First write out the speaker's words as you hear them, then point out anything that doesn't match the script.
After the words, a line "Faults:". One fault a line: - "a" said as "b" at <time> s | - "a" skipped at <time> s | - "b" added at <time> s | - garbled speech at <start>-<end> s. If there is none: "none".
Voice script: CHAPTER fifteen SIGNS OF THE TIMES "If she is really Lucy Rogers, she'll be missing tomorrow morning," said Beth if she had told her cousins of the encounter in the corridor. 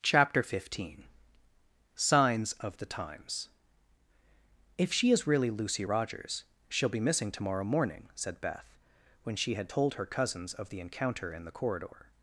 CHAPTER fifteen SIGNS OF THE TIMES "If she is really Lucy Rogers, she'll be missing tomorrow morning," said Beth when she had told her cousins of the encounter in the corridor.
Faults:
- "if" said as "when" at 9.2 s